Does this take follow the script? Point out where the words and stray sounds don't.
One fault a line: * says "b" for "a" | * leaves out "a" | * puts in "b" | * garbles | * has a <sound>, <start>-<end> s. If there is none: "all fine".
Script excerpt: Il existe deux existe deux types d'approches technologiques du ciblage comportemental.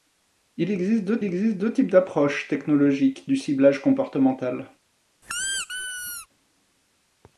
* has a squeak, 5.2-6.3 s